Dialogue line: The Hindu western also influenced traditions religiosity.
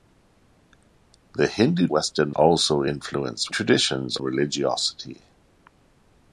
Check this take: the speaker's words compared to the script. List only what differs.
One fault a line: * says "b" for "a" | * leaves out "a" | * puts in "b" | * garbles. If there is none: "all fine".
all fine